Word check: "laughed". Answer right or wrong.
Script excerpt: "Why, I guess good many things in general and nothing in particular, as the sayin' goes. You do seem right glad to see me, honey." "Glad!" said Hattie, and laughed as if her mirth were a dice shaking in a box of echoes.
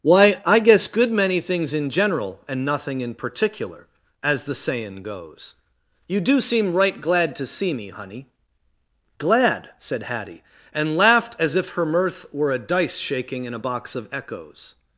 right